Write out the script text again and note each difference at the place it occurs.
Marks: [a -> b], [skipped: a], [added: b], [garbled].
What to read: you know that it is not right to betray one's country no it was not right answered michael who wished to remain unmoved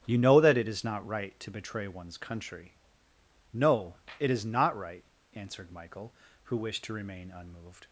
you know that it is not right to betray one's country no it [was -> is] not right answered michael who wished to remain unmoved